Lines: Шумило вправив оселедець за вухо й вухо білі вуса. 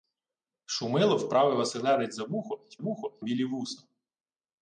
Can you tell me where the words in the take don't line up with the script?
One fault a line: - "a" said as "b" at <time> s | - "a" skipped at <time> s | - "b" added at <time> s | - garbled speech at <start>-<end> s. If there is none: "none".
none